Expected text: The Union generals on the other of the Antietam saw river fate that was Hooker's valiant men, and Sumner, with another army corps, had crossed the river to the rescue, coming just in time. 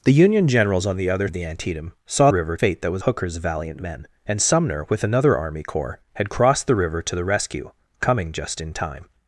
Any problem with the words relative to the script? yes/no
no